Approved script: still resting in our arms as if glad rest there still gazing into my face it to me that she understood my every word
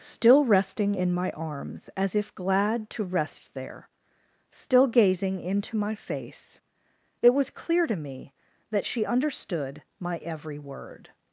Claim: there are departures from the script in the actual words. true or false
true